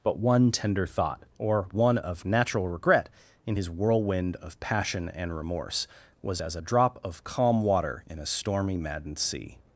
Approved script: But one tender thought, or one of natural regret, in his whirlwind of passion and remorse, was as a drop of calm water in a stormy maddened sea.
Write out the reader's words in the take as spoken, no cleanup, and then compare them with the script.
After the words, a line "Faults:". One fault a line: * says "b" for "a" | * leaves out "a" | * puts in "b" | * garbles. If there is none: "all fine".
But one tender thought, or one of natural regret, in his whirlwind of passion and remorse, was as a drop of calm water in a stormy maddened sea.
Faults:
all fine